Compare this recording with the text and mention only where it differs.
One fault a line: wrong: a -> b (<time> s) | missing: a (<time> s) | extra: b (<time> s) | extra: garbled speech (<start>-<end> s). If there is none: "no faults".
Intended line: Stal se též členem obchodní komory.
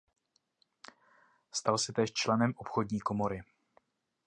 no faults